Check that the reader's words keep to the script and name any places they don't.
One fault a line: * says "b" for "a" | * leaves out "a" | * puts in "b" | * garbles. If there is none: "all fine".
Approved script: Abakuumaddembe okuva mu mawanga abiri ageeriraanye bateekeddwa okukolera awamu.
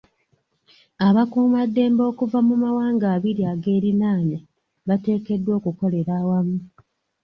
all fine